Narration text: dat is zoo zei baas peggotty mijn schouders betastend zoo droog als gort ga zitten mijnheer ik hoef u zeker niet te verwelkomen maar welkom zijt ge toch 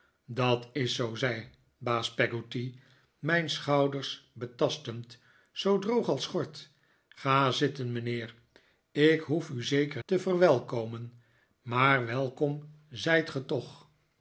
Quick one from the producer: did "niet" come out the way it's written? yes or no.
no